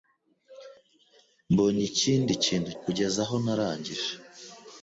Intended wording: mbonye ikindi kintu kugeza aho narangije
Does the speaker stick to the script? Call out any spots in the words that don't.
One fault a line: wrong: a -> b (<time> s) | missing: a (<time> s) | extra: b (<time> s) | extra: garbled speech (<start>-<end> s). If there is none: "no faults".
no faults